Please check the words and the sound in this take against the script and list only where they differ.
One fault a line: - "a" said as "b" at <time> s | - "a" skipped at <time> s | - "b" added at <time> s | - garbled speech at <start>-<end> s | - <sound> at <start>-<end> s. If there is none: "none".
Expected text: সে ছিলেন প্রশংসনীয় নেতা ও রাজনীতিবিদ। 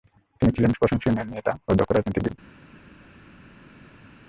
- "সে" said as "তিনি" at 0.4 s
- "দক্ষ" added at 1.8 s